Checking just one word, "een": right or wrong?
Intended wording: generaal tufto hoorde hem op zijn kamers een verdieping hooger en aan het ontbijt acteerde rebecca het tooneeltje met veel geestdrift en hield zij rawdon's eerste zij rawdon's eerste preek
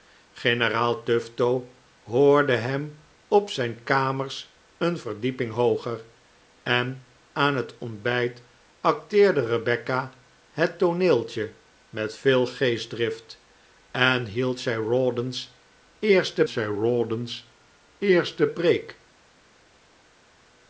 right